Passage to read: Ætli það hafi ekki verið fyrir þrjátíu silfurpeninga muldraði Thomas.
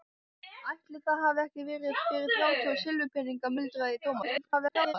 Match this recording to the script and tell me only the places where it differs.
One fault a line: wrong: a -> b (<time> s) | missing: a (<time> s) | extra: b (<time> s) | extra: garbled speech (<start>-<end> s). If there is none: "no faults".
extra: garbled speech (4.2-4.9 s)